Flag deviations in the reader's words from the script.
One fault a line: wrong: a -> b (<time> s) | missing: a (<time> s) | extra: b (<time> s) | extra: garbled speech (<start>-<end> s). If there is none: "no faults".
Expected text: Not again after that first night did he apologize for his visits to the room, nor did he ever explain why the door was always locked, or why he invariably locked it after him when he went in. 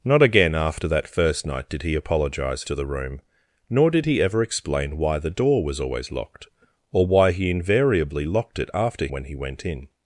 missing: for his visits (2.6 s)
missing: him (9.1 s)